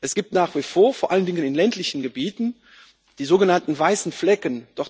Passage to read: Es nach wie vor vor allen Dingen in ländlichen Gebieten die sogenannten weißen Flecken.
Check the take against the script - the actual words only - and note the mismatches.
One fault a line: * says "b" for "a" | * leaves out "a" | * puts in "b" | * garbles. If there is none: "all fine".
* puts in "gibt"